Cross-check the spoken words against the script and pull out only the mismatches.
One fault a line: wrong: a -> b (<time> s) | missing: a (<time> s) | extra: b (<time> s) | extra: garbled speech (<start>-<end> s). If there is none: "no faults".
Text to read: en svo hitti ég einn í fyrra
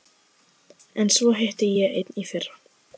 no faults